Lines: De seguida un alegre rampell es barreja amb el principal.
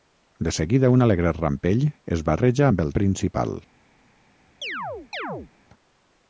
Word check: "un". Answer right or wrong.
right